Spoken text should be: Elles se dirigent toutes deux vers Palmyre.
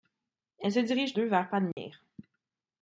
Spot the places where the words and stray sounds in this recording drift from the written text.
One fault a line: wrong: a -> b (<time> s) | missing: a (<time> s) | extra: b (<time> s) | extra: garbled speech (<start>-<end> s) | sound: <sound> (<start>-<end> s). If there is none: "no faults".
missing: toutes (1.1 s)
sound: dropout (1.7-1.8 s)